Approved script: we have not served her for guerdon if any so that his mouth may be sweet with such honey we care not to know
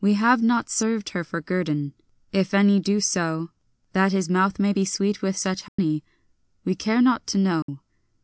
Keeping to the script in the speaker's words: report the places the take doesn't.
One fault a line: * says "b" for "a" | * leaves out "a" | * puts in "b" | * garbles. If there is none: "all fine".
* puts in "do"